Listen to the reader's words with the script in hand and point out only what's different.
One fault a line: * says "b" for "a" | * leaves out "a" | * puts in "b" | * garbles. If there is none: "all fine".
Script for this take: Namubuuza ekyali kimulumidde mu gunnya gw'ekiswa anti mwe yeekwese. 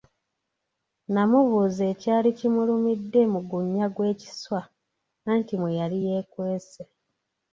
* puts in "yali"